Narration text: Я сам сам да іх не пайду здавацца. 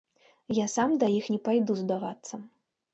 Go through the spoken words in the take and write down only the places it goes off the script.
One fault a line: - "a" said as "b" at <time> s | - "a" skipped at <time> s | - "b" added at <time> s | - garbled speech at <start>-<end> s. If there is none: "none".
- "сам" skipped at 1.0 s